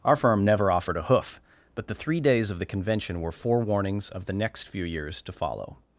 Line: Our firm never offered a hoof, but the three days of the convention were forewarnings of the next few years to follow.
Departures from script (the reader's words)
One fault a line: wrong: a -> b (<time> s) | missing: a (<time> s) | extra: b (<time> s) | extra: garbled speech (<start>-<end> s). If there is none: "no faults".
no faults